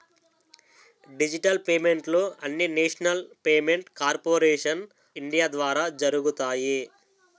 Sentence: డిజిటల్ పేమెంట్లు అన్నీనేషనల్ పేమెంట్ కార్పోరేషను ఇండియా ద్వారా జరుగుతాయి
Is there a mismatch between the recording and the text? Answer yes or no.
no